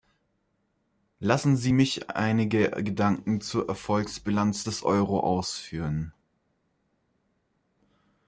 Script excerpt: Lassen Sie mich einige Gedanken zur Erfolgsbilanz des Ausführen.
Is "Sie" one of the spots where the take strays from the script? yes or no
no